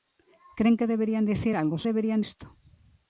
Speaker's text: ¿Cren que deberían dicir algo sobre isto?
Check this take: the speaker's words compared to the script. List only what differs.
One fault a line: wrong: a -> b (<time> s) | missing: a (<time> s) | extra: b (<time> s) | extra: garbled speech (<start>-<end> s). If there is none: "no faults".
wrong: sobre -> deberían (1.9 s)